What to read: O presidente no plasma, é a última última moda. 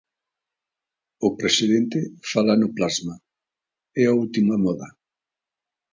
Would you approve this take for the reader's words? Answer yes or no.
no